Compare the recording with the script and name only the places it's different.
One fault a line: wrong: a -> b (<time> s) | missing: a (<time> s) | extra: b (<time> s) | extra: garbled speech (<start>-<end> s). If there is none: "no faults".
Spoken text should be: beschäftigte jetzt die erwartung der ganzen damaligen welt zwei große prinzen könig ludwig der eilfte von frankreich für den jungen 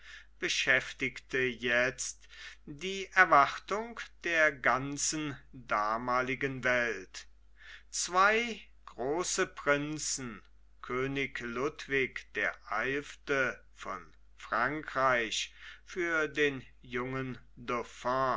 no faults